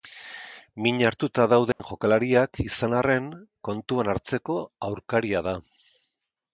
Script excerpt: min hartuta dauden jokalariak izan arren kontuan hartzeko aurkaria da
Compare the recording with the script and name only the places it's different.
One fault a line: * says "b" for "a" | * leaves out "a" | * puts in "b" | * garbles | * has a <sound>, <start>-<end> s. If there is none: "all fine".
* has a dropout, 1.7-1.8 s